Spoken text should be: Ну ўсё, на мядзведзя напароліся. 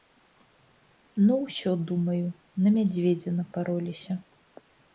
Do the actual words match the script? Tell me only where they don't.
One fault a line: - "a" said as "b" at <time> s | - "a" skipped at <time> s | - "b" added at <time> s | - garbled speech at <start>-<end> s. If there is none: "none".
- "думаю" added at 1.9 s